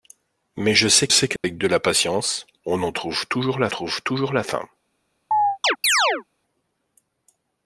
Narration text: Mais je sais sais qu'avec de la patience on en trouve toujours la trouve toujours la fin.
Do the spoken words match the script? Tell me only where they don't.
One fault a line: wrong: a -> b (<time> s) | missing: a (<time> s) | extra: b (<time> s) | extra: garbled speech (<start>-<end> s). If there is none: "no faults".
no faults